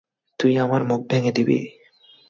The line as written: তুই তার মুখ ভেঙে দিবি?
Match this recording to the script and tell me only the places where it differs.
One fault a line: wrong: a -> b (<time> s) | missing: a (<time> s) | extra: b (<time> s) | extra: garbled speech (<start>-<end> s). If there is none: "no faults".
wrong: তার -> আমার (0.6 s)